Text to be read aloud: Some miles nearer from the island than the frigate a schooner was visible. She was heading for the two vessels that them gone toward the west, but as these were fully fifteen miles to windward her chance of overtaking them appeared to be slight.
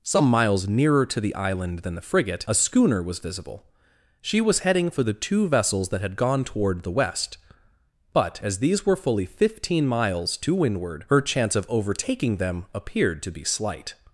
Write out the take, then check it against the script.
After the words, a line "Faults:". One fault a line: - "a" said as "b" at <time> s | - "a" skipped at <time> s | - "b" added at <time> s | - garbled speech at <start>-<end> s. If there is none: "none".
Some miles nearer to the island than the frigate a schooner was visible. She was heading for the two vessels that had gone toward the west, but as these were fully fifteen miles to windward her chance of overtaking them appeared to be slight.
Faults:
- "from" said as "to" at 1.1 s
- "them" said as "had" at 6.0 s